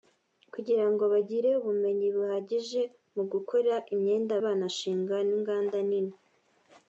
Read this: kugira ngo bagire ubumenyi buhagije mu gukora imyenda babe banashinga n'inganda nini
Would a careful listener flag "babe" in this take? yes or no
yes